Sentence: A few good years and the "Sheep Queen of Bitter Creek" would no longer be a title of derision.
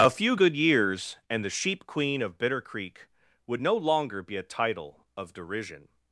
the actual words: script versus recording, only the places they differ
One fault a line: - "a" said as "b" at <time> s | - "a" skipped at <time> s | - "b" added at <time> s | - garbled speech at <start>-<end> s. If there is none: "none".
none